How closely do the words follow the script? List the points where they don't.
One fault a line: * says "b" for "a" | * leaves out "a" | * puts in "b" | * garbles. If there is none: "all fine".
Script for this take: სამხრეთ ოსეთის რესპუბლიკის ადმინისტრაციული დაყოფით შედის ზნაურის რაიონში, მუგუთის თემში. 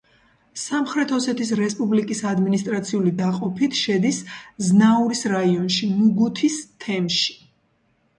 all fine